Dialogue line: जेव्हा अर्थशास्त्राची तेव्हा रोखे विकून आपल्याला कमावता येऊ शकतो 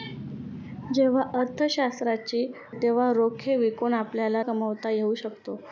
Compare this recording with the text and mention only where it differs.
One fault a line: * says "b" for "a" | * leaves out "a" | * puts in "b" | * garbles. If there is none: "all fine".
all fine